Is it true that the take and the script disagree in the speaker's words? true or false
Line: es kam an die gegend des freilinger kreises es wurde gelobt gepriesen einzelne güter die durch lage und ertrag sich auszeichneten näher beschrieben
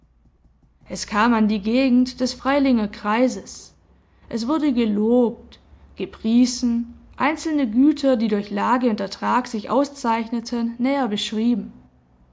false